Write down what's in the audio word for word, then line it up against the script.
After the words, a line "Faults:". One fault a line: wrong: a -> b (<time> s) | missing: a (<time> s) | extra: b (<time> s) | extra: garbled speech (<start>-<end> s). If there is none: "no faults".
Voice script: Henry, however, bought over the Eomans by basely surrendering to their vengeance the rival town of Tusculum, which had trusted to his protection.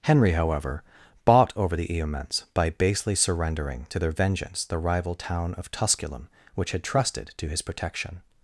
Henry, however, bought over the Eomans by basely surrendering to their vengeance the rival town of Tusculum, which had trusted to his protection.
Faults:
no faults